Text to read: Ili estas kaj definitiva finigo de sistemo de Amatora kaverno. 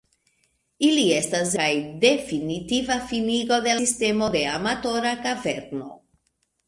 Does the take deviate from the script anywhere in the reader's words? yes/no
no